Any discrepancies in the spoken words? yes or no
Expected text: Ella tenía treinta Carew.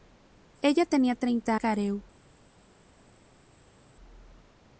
no